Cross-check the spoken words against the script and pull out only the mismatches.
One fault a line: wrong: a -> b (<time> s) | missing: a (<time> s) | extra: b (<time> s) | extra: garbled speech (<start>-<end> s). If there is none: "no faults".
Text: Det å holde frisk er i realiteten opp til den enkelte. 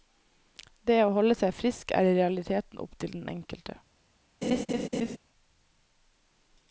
extra: seg (1.4 s)